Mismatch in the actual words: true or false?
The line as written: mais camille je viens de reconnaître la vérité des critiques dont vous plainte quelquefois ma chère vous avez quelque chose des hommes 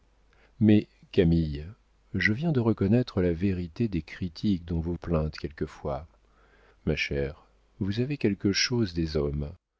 false